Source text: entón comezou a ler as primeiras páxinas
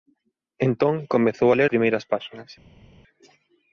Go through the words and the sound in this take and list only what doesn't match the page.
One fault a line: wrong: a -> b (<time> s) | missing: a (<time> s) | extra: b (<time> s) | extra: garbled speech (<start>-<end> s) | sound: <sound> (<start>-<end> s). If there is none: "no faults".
missing: as (1.7 s)